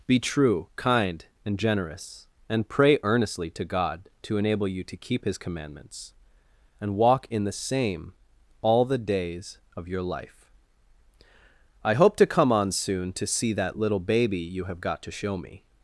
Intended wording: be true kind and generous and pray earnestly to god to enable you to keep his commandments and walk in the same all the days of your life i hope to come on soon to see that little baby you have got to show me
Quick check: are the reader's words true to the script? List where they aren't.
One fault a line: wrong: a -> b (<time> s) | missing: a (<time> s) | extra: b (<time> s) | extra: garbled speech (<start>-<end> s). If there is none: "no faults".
no faults